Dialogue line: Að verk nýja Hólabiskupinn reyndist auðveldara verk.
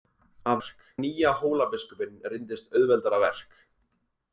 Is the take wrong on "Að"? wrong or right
right